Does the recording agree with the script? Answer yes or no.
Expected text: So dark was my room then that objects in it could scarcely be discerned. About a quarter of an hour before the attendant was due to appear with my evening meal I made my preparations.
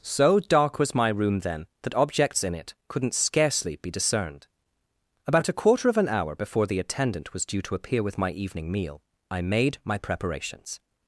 no